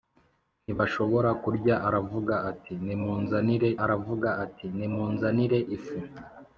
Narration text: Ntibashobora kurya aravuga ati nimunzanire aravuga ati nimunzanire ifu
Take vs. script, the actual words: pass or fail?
pass